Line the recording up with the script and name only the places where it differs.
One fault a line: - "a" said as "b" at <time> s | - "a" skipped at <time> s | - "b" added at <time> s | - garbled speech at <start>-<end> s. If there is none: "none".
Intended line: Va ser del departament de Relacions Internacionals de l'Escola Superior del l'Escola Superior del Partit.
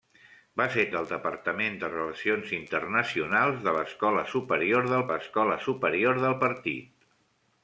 none